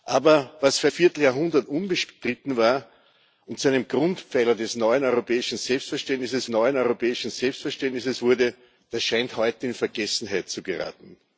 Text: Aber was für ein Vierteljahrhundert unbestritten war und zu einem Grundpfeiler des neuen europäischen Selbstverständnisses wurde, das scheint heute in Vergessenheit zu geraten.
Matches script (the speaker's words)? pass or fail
fail